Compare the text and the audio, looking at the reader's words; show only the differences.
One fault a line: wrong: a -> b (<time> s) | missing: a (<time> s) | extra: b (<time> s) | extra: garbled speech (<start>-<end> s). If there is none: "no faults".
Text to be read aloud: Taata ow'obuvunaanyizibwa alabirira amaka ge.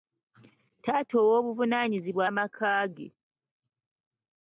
missing: alabirira (2.2 s)